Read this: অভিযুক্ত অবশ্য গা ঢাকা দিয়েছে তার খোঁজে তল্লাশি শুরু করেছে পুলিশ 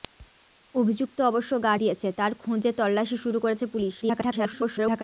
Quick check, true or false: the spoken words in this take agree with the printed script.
false